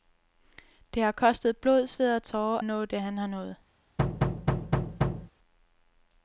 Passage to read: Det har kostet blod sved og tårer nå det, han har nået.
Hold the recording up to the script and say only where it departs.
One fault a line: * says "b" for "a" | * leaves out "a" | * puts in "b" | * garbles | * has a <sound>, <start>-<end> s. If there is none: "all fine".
* has a thud, 4.0-5.3 s